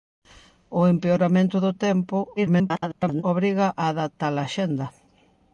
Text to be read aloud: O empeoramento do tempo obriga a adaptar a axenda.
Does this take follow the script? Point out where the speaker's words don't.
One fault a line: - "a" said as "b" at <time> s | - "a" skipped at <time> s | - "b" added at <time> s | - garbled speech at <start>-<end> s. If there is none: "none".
- garbled speech at 2.4-3.2 s